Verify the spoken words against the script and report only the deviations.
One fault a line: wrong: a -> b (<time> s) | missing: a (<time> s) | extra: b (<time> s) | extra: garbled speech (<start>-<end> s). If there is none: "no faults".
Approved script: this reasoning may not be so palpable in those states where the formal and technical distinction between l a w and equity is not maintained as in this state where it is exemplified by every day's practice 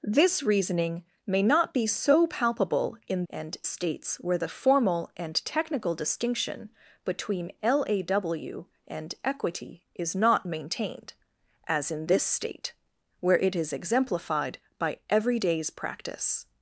wrong: those -> and (3.3 s)